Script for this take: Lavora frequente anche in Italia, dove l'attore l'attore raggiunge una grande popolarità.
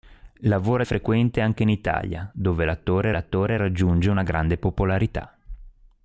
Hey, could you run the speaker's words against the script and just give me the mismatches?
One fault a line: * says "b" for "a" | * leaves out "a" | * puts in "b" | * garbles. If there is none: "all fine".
all fine